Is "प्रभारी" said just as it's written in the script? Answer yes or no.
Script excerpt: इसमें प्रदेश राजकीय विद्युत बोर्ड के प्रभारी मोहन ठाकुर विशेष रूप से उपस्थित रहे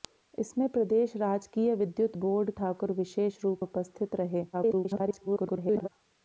no